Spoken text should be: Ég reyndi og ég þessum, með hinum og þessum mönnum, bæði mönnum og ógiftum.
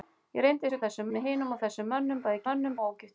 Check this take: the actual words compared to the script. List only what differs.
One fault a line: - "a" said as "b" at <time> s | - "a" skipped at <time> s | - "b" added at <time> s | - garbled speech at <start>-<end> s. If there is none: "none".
none